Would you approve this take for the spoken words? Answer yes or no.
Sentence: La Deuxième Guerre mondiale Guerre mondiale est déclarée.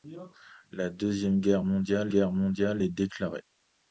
yes